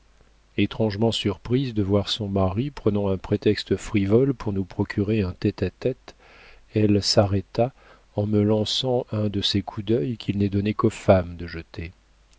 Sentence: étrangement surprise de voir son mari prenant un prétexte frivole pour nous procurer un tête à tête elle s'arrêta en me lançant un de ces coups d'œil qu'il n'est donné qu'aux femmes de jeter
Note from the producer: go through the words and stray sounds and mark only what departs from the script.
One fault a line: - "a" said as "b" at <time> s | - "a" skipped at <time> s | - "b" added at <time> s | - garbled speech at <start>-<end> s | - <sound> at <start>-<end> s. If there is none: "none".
none